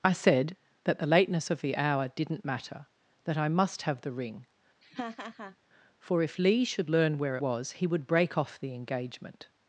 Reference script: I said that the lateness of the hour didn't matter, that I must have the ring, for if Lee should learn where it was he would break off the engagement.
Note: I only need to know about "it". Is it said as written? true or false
false